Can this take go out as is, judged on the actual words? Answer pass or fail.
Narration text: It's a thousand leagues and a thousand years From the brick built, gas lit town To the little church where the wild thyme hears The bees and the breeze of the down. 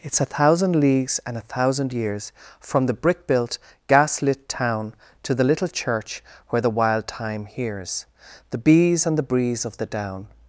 pass